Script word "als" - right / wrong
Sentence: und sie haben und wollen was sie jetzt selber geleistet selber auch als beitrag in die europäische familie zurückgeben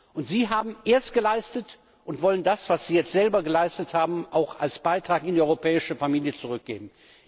right